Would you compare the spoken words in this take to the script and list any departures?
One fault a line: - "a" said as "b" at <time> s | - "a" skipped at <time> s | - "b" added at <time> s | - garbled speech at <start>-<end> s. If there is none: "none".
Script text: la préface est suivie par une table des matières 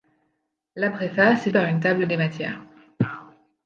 - "suivie" skipped at 1.5 s